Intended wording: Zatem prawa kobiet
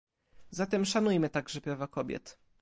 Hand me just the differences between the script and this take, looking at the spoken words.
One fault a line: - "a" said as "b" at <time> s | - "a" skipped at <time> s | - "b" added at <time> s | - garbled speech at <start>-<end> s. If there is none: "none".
- "szanujmy także" added at 0.8 s